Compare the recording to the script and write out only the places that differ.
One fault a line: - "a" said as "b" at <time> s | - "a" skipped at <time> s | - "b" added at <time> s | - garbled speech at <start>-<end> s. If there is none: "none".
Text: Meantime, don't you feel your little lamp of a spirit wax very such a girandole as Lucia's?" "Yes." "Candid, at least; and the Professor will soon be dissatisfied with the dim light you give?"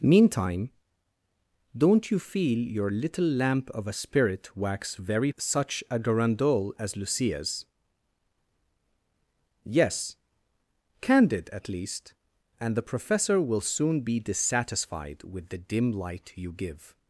none